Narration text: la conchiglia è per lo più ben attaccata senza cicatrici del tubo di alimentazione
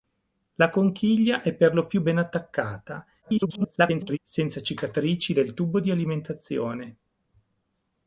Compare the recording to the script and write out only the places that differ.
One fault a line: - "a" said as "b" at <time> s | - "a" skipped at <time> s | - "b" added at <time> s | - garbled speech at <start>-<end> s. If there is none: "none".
- garbled speech at 3.2-4.2 s